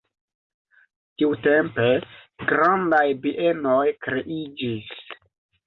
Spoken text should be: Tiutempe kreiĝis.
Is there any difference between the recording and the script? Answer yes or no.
yes